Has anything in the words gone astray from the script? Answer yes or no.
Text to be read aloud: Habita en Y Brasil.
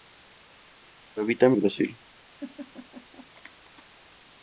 no